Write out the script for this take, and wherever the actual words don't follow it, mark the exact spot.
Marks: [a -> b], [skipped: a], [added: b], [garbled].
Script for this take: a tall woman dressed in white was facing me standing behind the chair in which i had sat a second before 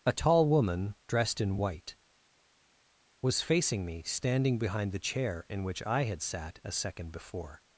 a tall woman dressed in white was facing me standing behind the chair in which i had sat a second before